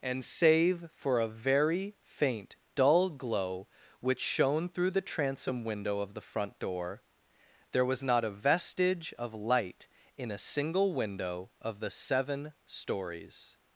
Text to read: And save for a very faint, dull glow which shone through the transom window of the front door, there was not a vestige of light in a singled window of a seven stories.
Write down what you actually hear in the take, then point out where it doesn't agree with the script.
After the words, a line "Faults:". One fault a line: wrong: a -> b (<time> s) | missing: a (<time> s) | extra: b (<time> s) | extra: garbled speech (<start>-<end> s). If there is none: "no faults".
And save for a very faint, dull glow which shone through the transom window of the front door, there was not a vestige of light in a single window of the seven stories.
Faults:
wrong: singled -> single (10.4 s)
wrong: a -> the (11.8 s)